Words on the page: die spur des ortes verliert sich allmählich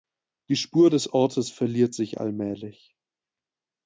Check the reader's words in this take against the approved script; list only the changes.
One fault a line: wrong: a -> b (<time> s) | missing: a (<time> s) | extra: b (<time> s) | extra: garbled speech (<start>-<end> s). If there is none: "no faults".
no faults